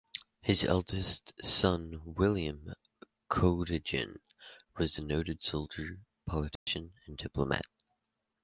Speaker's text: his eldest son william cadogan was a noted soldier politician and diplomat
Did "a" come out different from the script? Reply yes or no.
no